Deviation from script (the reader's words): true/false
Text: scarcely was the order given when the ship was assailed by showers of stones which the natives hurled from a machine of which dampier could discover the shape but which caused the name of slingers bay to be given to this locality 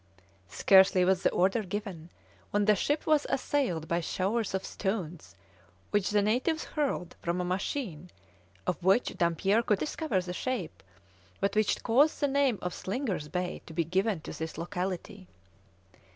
false